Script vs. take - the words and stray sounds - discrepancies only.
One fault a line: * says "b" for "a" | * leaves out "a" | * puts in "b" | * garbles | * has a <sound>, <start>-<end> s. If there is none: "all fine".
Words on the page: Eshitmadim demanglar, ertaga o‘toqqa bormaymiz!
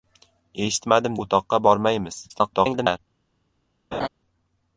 * leaves out "demanglar ertaga"
* garbles
* has a laugh, 3.9-4.1 s